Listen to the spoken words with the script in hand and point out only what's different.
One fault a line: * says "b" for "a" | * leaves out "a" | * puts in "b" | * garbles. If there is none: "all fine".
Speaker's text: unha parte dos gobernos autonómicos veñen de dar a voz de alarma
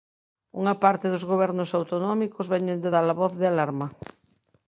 all fine